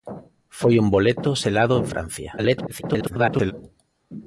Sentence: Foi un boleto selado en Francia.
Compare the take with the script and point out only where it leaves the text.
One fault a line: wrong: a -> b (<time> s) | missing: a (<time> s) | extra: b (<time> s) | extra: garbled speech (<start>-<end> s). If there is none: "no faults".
extra: garbled speech (2.4-3.5 s)